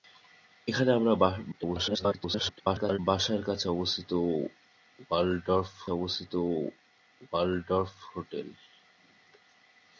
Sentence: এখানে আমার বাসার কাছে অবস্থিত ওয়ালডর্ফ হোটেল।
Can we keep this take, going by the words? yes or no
no